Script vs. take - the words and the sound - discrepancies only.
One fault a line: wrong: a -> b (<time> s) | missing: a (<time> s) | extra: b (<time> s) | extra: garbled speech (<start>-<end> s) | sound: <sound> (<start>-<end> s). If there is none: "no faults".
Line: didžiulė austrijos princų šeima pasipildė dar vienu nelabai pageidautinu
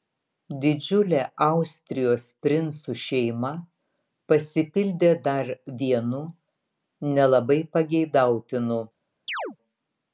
sound: chirp (9.3-9.6 s)